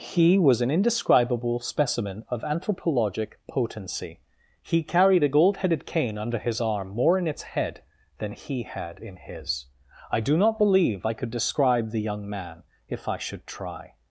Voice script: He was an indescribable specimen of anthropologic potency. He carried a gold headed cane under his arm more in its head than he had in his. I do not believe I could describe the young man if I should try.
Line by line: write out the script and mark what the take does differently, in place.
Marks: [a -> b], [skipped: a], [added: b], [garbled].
He was an indescribable specimen of anthropologic potency. He carried a gold headed cane under his arm more in its head than he had in his. I do not believe I could describe the young man if I should try.